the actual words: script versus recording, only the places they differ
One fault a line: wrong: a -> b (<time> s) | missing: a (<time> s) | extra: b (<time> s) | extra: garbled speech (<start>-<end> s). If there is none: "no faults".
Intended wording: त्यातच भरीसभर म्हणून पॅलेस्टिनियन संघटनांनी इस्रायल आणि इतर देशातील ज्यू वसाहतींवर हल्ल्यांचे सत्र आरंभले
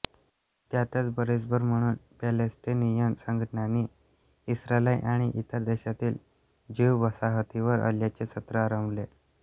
no faults